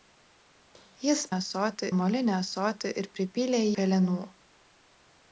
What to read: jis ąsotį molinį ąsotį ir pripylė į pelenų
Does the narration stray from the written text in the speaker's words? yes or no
no